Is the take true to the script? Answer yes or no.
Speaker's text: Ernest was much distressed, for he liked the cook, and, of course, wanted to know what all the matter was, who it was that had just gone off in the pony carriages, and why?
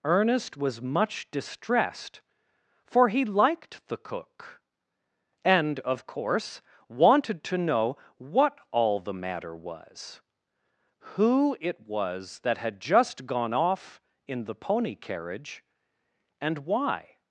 no